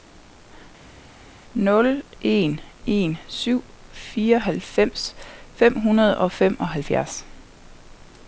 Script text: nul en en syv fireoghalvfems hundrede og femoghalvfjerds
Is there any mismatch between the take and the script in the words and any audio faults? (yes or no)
yes